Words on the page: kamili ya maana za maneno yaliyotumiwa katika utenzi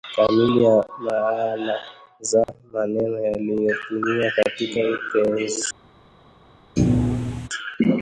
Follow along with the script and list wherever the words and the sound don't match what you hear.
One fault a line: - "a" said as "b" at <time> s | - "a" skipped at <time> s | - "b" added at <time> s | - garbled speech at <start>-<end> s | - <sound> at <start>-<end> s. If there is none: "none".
- dropout at 2.4-2.5 s
- thud at 6.8-7.5 s